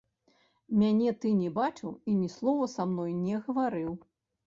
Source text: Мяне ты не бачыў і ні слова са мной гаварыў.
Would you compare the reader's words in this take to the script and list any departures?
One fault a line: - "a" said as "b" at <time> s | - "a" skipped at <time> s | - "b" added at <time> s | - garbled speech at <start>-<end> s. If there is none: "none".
- "не" added at 3.3 s